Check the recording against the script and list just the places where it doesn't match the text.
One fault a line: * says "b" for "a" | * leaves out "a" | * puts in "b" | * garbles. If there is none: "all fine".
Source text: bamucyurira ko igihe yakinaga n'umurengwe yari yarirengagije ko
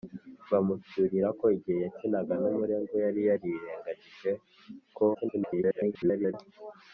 * garbles